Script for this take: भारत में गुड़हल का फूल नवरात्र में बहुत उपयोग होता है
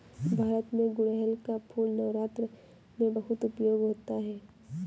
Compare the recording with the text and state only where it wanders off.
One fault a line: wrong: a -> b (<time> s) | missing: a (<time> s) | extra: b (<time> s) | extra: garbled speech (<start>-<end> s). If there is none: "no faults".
no faults